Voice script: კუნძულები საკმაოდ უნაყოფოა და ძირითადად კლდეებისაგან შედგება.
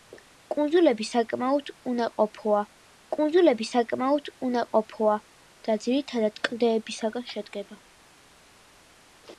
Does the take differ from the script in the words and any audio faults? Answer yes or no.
yes